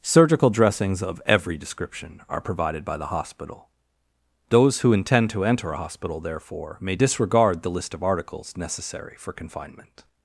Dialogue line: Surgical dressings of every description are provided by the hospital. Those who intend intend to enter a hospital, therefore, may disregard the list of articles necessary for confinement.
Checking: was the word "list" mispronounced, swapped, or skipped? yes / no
no